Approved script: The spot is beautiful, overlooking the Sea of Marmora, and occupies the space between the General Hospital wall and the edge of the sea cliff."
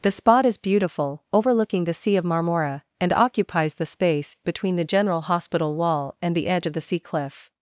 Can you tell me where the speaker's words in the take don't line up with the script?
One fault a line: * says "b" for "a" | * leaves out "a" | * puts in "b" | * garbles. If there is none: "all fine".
all fine